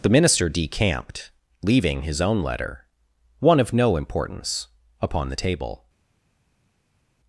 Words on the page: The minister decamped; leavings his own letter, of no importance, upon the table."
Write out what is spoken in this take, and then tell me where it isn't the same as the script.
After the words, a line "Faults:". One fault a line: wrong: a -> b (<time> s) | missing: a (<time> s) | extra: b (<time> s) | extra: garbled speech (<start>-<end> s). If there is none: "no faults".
The minister decamped; leaving his own letter, one of no importance, upon the table."
Faults:
wrong: leavings -> leaving (1.6 s)
extra: one (3.4 s)